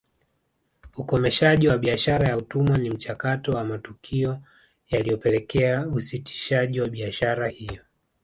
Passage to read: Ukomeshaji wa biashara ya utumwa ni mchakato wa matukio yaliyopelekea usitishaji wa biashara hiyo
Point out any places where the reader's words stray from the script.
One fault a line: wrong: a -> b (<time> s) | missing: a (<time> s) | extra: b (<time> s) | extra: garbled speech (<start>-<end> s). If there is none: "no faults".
no faults